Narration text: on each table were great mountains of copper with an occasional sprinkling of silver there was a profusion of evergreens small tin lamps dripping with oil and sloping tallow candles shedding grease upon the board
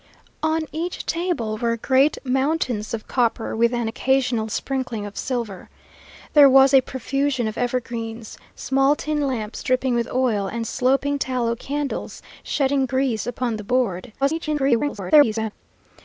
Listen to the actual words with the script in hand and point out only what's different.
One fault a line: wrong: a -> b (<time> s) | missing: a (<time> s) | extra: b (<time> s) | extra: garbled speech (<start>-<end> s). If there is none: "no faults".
extra: garbled speech (14.2-15.5 s)